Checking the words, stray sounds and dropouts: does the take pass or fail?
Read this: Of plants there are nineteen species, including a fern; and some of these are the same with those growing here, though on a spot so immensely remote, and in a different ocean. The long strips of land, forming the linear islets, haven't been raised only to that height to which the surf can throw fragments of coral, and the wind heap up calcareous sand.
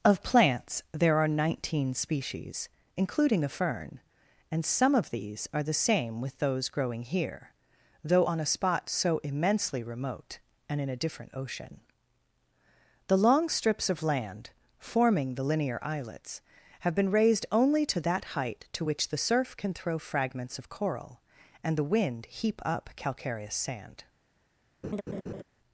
fail